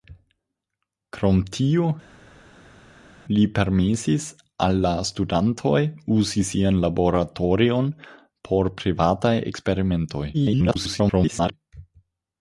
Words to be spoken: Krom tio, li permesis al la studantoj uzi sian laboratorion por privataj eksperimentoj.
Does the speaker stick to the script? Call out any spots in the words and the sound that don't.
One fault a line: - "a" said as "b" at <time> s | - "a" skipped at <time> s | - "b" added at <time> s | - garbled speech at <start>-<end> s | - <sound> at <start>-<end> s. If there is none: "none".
- garbled speech at 10.3-11.5 s